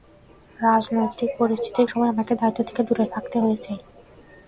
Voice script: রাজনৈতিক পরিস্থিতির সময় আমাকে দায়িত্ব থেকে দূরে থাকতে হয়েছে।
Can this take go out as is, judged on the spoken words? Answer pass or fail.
pass